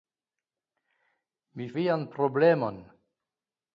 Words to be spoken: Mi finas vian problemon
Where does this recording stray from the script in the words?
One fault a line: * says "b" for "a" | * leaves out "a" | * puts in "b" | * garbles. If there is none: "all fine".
* leaves out "finas"